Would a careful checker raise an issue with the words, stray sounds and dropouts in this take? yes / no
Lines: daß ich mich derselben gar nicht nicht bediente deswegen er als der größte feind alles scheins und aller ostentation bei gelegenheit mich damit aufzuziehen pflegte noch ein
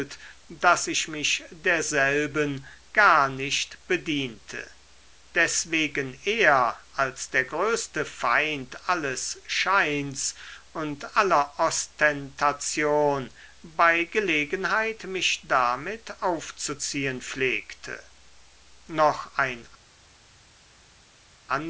yes